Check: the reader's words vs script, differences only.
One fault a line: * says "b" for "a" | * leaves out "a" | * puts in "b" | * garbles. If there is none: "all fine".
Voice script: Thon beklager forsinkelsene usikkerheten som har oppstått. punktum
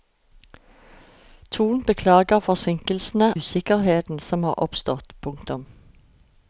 all fine